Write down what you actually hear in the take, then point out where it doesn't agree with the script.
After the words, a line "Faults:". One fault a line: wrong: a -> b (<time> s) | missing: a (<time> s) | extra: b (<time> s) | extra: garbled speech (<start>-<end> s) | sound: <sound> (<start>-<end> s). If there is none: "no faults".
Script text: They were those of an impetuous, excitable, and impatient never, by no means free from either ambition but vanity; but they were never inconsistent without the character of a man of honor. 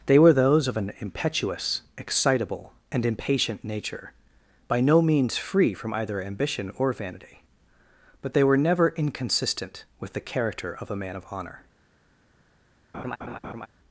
They were those of an impetuous, excitable, and impatient nature, by no means free from either ambition or vanity; but they were never inconsistent with the character of a man of honor.
Faults:
wrong: never -> nature (3.6 s)
wrong: but -> or (6.8 s)
wrong: without -> with (10.0 s)
sound: laugh (12.9-13.7 s)